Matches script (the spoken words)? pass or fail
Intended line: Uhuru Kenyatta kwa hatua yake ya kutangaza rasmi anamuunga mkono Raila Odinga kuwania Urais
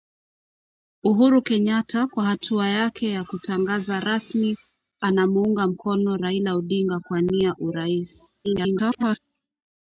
fail